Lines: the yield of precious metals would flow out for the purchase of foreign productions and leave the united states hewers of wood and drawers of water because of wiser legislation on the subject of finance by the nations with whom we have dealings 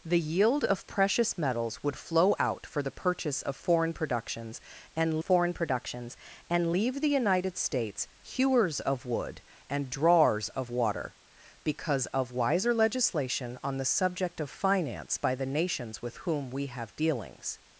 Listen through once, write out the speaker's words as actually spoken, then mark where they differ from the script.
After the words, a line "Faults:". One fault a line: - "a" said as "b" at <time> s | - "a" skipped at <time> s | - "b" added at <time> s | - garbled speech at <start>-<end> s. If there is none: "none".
the yield of precious metals would flow out for the purchase of foreign productions and foreign productions and leave the united states hewers of wood and drawers of water because of wiser legislation on the subject of finance by the nations with whom we have dealings
Faults:
- "foreign productions and" added at 5.2 s